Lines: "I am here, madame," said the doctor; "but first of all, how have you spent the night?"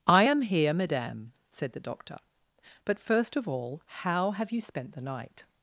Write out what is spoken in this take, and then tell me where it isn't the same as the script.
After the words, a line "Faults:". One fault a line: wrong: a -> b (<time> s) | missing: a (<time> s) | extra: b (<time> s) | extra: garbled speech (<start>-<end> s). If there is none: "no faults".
"I am here, madame," said the doctor; "but first of all, how have you spent the night?"
Faults:
no faults